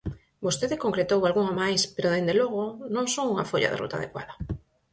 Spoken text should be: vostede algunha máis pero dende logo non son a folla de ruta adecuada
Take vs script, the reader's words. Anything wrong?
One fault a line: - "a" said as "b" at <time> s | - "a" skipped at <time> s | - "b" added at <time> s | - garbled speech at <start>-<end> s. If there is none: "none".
- "concretou" added at 0.8 s
- "a" said as "unha" at 3.3 s